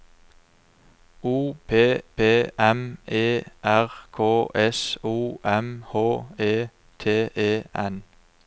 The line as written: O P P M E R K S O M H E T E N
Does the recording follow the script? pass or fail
pass